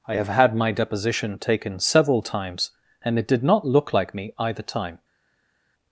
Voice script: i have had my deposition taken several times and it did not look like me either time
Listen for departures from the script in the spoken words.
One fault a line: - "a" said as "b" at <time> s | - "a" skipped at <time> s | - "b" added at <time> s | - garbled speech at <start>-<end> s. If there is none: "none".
none